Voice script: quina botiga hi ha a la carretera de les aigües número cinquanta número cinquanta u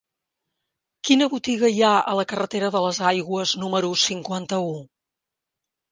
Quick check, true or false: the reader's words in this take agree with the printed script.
false